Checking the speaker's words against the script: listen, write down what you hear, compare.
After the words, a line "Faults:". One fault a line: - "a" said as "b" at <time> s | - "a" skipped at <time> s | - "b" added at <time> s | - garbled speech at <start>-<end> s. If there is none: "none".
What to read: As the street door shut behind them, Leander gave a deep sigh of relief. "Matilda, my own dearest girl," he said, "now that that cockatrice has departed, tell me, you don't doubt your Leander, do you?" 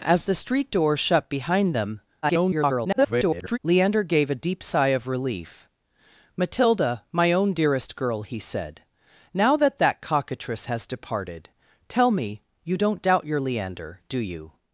As the street door shut behind them, [garbled] Leander gave a deep sigh of relief. "Matilda, my own dearest girl," he said, "now that that cockatrice has departed, tell me, you don't doubt your Leander, do you?"
Faults:
- garbled speech at 2.2-3.6 s